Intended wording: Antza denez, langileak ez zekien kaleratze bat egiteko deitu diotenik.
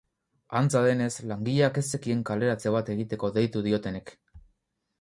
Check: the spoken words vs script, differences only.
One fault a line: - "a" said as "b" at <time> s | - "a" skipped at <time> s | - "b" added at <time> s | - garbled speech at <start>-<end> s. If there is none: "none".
none